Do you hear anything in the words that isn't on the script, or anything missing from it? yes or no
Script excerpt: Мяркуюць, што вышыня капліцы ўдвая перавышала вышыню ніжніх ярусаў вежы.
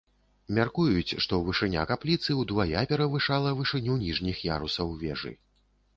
no